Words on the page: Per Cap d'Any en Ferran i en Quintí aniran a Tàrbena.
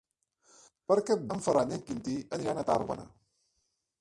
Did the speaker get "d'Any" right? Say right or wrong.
wrong